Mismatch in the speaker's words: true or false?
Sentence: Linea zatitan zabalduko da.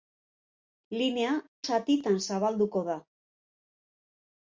false